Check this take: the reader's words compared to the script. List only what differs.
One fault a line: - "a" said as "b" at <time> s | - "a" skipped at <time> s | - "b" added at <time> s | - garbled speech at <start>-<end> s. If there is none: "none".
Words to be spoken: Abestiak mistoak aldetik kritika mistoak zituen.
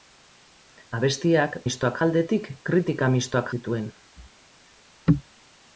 none